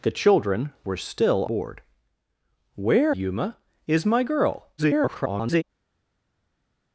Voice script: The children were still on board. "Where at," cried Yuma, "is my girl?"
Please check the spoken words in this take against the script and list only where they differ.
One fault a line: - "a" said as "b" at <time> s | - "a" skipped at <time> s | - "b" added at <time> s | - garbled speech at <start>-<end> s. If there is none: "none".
- "on" skipped at 1.4 s
- "at cried" skipped at 3.2 s
- garbled speech at 4.8-5.6 s